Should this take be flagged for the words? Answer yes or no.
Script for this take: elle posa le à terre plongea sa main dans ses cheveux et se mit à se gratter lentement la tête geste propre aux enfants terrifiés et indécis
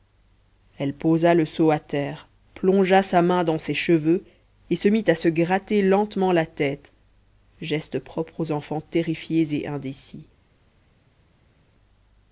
yes